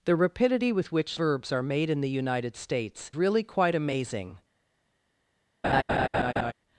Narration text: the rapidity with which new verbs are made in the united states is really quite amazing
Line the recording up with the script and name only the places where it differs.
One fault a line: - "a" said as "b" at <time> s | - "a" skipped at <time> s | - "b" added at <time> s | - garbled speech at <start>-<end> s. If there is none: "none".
- "new" skipped at 1.2 s
- "is" skipped at 3.1 s